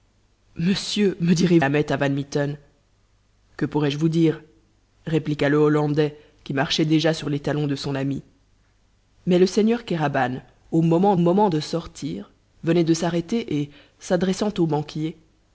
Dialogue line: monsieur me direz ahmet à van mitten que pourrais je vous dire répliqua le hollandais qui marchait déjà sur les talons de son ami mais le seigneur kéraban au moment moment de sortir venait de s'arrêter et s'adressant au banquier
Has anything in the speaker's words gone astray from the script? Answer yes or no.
no